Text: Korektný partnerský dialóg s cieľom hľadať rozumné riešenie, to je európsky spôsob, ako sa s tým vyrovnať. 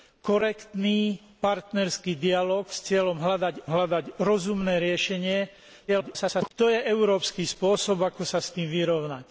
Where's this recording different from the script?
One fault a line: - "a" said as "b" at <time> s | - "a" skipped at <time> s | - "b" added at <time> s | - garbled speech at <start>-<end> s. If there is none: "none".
- "hľadať" added at 3.7 s
- garbled speech at 5.9-6.5 s